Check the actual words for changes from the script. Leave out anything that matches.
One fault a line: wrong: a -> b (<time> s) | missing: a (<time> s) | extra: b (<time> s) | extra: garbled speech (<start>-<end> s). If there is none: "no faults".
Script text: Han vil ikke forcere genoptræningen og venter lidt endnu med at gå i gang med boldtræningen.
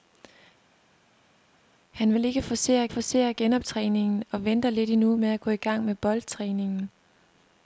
extra: forcere (2.9 s)